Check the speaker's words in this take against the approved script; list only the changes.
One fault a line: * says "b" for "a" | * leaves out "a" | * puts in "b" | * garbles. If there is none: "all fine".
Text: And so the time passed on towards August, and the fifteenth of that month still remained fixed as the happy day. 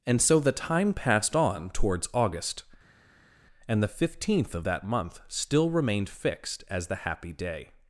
all fine